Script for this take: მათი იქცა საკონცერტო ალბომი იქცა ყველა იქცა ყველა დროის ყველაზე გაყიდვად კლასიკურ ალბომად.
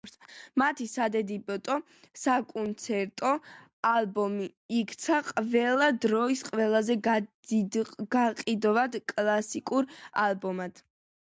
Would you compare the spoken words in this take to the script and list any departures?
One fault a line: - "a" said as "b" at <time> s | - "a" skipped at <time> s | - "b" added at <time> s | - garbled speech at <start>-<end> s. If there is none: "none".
- "იქცა" said as "სადებიუტო" at 0.9 s
- "იქცა ყველა" skipped at 5.9 s